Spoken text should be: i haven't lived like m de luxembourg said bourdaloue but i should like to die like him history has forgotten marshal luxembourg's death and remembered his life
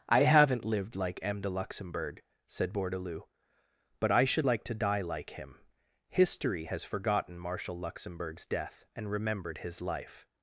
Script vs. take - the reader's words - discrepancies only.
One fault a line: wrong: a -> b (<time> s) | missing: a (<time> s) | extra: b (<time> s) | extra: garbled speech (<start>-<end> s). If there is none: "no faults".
no faults